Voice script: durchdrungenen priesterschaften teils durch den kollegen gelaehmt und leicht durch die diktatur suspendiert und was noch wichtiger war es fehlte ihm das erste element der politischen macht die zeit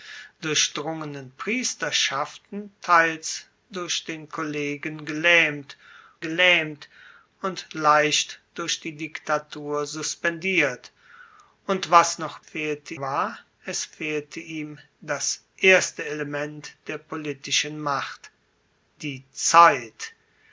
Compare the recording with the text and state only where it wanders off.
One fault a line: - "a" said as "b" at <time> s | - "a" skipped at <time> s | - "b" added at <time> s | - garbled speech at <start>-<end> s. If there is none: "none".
- "gelaehmt" added at 6.2 s
- "wichtiger" said as "fehlte" at 12.4 s